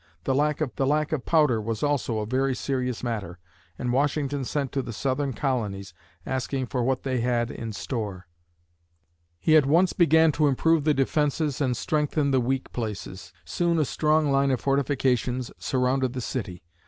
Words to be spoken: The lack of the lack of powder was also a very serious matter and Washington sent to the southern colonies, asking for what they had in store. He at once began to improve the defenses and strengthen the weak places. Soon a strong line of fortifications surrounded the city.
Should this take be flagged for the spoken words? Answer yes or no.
no